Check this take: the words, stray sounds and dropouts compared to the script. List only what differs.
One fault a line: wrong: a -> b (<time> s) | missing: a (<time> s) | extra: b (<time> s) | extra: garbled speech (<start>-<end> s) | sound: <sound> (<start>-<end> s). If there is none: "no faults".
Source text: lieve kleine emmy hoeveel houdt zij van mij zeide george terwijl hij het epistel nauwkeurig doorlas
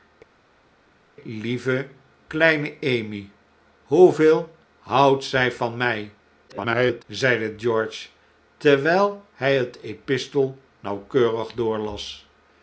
extra: garbled speech (6.5-7.0 s)